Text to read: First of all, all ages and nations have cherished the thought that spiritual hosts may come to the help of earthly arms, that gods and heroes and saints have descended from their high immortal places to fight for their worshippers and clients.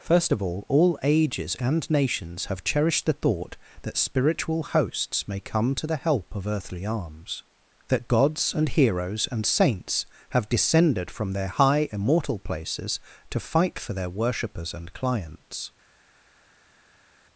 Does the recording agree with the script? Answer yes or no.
yes